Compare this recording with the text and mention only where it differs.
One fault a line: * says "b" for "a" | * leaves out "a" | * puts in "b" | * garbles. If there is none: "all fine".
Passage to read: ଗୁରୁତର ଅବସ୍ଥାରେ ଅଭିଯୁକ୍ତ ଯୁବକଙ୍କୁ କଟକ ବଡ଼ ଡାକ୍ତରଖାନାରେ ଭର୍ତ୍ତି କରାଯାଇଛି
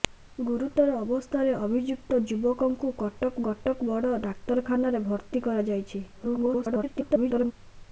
* puts in "କଟକ"
* garbles